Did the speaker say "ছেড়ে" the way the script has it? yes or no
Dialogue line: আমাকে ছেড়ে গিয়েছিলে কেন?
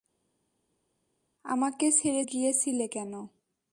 yes